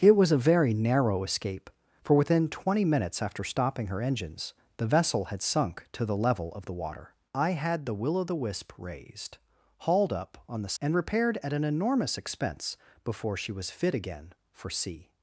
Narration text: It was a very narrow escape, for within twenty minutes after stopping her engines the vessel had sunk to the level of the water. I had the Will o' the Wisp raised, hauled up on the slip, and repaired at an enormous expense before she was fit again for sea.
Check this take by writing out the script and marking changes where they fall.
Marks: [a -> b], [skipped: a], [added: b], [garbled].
It was a very narrow escape, for within twenty minutes after stopping her engines the vessel had sunk to the level of the water. I had the Will o' the Wisp raised, hauled up on the [skipped: slip,] and repaired at an enormous expense before she was fit again for sea.